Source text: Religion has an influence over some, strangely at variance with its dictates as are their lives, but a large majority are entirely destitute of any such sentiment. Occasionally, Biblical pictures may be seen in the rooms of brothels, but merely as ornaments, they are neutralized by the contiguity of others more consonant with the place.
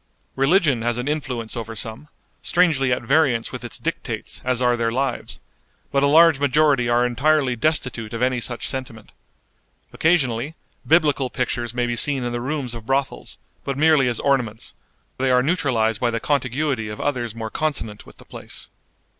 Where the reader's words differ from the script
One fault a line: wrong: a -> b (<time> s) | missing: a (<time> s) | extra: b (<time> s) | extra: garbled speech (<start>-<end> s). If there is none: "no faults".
no faults